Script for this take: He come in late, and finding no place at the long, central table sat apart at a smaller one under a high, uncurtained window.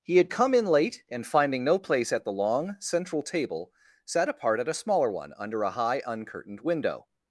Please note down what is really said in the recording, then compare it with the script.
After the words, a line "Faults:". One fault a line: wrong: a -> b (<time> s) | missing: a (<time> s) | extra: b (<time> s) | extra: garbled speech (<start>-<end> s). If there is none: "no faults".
He had come in late, and finding no place at the long, central table sat apart at a smaller one under a high, uncurtained window.
Faults:
extra: had (0.2 s)